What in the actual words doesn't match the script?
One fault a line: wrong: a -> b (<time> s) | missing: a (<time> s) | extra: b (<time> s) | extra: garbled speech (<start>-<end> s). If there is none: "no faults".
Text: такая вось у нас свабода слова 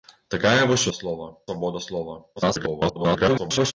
wrong: нас -> слова (0.9 s)
extra: garbled speech (2.4-3.7 s)